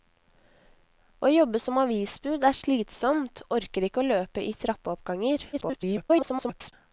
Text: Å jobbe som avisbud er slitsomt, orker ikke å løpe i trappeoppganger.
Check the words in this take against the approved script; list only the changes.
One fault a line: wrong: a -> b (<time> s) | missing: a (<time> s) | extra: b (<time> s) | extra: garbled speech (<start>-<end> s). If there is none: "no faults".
extra: garbled speech (5.5-6.7 s)